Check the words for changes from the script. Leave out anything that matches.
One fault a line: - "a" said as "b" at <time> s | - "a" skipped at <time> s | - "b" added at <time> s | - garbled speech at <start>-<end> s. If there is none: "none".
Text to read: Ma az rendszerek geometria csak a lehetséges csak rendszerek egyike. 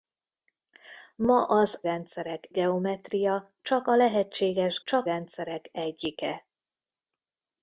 none